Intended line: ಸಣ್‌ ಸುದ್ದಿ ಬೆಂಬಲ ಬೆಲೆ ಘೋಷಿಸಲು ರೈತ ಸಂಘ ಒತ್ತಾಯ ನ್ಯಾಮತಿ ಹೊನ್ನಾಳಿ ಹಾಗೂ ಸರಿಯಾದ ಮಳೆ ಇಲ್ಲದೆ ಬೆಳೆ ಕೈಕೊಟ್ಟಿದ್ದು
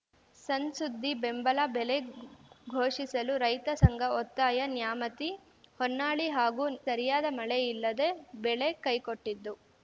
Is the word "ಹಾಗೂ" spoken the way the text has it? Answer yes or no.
yes